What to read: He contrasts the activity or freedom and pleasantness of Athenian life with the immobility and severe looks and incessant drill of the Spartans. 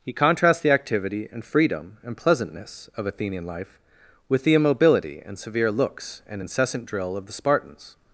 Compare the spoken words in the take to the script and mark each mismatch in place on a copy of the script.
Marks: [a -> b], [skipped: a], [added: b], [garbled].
He contrasts the activity [or -> and] freedom and pleasantness of Athenian life with the immobility and severe looks and incessant drill of the Spartans.